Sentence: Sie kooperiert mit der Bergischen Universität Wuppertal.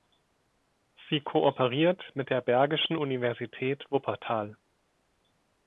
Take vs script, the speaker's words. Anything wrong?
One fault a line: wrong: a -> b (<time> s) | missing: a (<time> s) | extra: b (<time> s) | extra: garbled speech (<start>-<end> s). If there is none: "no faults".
no faults